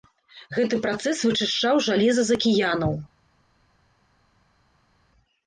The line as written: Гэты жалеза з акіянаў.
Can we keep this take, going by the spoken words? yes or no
no